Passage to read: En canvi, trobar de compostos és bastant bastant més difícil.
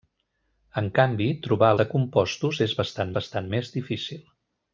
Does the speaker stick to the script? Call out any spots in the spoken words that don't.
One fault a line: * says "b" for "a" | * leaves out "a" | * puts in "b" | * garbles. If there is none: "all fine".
all fine